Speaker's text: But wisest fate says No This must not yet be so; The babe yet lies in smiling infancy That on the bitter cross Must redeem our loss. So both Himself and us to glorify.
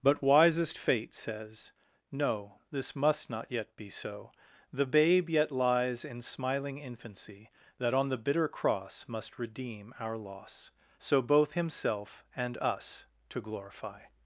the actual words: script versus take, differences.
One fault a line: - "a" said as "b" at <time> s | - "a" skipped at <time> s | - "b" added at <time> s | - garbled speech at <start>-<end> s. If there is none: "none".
none